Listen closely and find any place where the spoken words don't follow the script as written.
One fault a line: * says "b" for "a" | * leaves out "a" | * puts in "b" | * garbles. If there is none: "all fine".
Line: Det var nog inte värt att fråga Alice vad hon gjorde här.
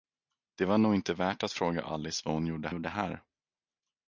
* puts in "gjorde"